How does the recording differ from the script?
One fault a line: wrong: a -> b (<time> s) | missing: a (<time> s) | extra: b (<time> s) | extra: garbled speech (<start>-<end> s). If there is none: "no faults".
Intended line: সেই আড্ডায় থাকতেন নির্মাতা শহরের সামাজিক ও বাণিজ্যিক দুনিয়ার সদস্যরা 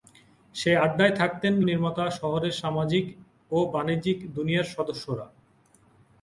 no faults